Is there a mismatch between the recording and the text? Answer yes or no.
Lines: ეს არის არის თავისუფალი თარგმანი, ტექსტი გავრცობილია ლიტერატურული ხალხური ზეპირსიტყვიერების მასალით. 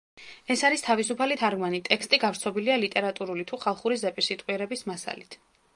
yes